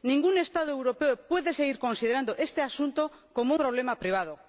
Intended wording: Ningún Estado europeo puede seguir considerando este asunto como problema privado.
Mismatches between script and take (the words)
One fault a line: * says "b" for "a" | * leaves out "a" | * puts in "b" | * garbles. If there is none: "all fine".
all fine